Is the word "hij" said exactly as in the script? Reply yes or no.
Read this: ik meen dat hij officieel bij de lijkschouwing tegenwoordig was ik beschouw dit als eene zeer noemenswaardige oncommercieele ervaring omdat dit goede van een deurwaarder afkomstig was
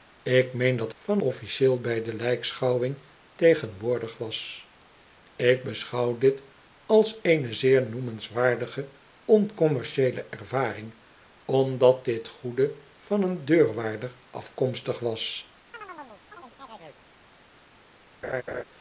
no